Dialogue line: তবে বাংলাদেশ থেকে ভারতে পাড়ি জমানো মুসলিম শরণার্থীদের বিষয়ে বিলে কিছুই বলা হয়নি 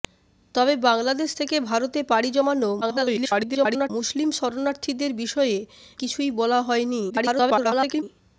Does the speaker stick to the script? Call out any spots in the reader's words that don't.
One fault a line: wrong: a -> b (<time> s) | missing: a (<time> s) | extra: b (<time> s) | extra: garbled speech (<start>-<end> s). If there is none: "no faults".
extra: garbled speech (2.8-3.9 s)
missing: বিলে (5.6 s)
extra: garbled speech (7.1-8.0 s)